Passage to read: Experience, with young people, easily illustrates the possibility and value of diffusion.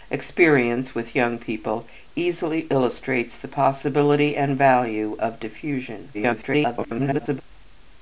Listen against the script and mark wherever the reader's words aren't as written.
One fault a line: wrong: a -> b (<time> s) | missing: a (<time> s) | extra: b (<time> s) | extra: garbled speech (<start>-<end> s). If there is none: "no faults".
extra: garbled speech (6.1-7.4 s)